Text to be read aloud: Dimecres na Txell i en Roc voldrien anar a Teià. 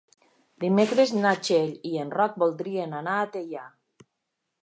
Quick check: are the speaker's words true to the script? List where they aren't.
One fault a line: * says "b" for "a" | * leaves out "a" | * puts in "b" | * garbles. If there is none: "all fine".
all fine